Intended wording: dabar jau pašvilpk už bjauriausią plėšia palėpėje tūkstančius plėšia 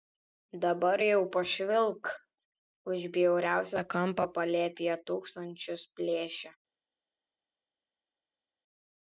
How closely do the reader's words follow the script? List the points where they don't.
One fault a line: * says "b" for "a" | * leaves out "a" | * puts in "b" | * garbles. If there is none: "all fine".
* says "kampą" for "plėšia"